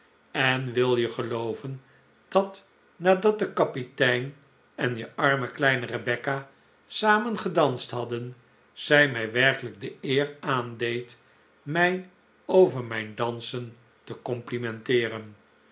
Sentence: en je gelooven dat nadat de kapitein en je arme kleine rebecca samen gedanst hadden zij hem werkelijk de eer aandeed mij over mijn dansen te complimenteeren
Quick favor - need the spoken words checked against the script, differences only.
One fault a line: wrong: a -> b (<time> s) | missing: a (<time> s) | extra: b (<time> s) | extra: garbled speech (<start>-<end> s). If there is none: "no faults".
extra: wil (0.7 s)
wrong: hem -> mij (9.1 s)